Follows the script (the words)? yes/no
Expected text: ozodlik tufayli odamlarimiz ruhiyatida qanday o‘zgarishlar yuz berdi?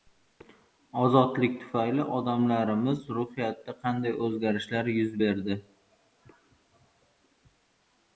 yes